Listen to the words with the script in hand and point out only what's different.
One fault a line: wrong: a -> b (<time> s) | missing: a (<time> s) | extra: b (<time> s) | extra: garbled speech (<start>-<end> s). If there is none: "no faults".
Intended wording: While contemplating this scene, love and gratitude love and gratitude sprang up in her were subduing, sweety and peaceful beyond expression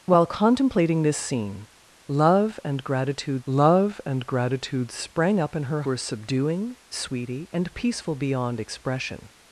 no faults